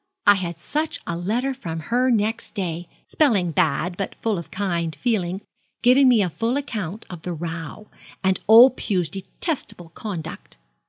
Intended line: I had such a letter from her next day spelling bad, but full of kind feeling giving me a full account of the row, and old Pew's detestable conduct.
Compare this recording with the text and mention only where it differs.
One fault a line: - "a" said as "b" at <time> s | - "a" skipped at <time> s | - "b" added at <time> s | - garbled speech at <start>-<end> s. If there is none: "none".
none